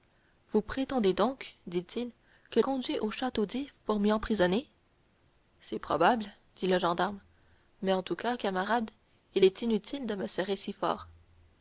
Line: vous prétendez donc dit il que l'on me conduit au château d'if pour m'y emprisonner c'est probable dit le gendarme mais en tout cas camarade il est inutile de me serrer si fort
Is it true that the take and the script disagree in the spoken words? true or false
true